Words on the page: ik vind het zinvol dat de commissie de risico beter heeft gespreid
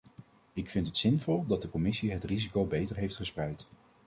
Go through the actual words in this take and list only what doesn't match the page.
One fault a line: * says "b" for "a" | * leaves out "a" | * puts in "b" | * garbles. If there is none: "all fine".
* says "het" for "de"